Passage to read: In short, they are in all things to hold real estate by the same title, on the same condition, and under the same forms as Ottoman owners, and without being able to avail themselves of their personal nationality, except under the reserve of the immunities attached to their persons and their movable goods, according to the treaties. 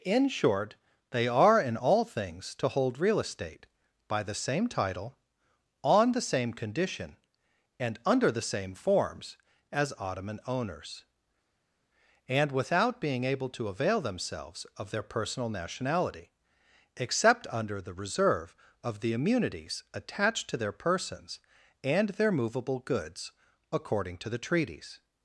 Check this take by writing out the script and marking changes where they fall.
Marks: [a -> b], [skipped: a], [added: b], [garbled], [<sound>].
In short, they are in all things to hold real estate by the same title, on the same condition, and under the same forms as Ottoman owners, and without being able to avail themselves of their personal nationality, except under the reserve of the immunities attached to their persons and their movable goods, according to the treaties.